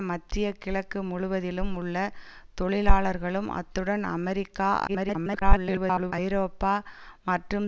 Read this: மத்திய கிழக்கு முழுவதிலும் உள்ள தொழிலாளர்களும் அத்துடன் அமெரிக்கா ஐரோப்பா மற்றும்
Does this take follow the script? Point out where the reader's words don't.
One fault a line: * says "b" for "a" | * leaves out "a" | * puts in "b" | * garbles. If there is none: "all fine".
* garbles